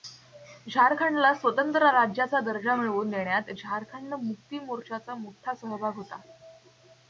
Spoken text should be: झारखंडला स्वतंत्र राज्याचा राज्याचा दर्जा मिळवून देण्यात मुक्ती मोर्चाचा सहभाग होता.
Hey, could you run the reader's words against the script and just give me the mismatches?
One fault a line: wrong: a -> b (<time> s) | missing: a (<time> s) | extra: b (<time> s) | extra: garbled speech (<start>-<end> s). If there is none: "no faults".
missing: राज्याचा (2.4 s)
extra: झारखंड (3.6 s)
extra: मोठा (5.1 s)